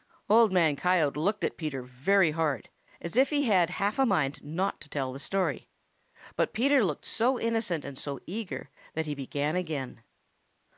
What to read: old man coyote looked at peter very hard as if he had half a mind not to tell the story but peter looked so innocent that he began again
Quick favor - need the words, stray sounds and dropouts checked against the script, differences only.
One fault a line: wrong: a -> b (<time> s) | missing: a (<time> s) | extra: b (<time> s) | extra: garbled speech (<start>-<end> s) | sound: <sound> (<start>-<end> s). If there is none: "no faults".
extra: and so eager (7.8 s)